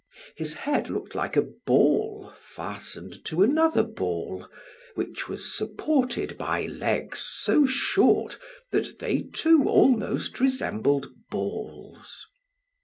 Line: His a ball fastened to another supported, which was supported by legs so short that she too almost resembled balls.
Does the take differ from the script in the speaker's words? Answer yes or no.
yes